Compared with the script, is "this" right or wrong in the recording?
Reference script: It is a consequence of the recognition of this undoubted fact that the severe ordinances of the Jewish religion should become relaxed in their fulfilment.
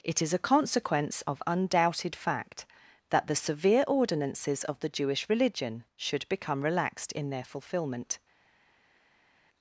wrong